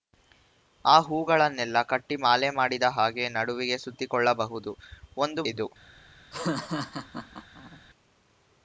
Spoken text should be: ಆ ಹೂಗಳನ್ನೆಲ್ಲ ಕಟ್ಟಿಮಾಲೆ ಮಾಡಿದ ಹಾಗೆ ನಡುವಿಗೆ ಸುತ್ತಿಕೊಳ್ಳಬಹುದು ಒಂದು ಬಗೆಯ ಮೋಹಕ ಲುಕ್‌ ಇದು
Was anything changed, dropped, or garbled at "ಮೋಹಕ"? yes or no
yes